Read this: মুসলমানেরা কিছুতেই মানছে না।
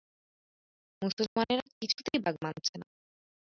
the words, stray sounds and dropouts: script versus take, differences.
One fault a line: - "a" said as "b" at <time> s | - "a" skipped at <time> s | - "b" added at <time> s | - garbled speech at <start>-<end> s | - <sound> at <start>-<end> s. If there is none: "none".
- dropout at 1.3-1.4 s
- "বাগ" added at 2.2 s